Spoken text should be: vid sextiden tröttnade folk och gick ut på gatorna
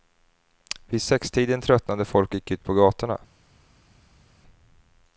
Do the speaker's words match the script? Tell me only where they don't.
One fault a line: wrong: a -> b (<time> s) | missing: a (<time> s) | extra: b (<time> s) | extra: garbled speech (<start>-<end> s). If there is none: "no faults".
no faults